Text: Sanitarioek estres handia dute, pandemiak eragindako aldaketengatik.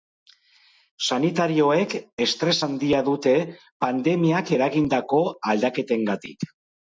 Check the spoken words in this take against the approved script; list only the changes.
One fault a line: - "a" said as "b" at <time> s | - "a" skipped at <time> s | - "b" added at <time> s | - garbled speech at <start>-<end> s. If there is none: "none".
none